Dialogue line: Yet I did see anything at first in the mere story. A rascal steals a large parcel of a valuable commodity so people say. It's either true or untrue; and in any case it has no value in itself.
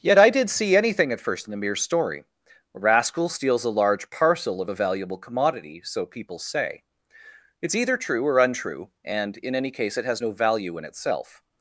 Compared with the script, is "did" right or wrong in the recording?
right